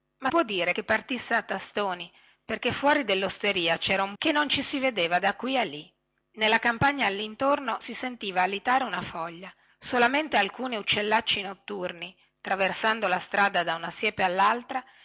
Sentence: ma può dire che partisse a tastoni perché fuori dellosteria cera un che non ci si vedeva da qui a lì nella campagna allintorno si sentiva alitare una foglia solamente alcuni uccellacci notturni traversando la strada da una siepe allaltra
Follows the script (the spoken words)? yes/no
yes